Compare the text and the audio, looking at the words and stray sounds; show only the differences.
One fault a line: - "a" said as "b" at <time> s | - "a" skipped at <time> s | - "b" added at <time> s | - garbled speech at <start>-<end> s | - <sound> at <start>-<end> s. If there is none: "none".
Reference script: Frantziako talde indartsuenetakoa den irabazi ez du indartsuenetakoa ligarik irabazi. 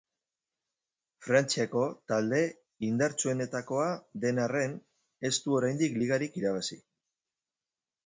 - "irabazi" said as "arren" at 4.5 s
- "indartsuenetakoa" said as "oraindik" at 5.6 s